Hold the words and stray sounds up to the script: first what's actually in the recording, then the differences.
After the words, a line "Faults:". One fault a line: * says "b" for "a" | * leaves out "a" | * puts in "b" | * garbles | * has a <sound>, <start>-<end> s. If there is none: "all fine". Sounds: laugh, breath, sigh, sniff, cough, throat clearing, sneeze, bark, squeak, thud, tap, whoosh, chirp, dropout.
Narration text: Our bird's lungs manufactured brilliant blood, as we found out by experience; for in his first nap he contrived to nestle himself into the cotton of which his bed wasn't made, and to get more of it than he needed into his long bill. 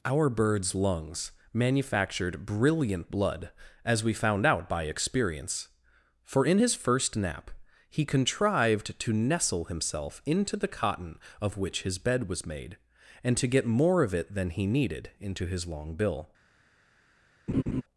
Our bird's lungs manufactured brilliant blood, as we found out by experience; for in his first nap he contrived to nestle himself into the cotton of which his bed was made, and to get more of it than he needed into his long bill.
Faults:
* says "was" for "wasn't"
* has a laugh, 17.5-17.8 s